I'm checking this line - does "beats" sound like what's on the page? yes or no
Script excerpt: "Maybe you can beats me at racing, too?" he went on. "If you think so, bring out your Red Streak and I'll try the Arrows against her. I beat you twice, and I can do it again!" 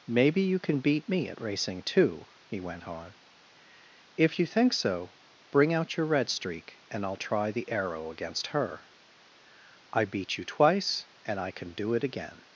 no